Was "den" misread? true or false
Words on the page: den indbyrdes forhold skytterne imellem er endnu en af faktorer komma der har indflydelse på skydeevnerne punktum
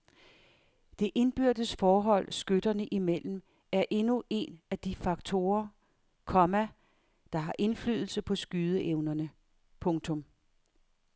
true